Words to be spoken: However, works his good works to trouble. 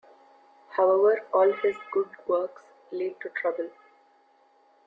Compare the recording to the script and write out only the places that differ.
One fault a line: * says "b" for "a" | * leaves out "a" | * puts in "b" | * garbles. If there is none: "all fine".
* says "all" for "works"
* puts in "lead"